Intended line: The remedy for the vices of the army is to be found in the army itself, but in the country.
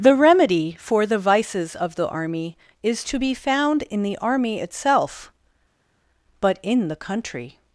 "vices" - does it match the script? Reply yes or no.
yes